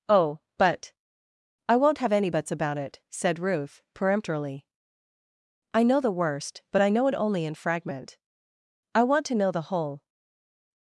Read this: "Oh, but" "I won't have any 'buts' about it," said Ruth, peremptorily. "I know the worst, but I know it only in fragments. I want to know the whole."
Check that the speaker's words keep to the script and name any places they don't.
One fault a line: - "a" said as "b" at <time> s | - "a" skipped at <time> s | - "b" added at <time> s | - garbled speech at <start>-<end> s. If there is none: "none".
- "fragments" said as "fragment" at 7.6 s